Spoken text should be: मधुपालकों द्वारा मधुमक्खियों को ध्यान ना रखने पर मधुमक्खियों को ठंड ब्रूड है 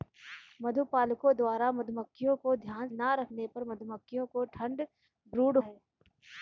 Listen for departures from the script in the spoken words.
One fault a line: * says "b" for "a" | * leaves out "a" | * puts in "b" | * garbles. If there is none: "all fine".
all fine